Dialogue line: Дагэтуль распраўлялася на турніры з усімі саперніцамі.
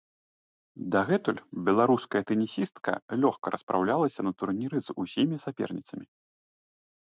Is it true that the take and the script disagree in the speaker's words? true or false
true